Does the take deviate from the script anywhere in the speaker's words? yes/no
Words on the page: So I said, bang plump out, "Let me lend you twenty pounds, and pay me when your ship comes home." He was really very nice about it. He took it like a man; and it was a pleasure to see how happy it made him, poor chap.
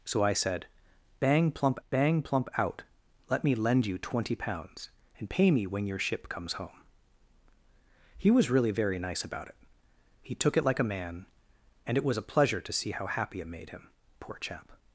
yes